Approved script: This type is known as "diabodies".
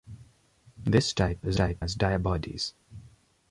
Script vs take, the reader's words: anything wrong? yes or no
yes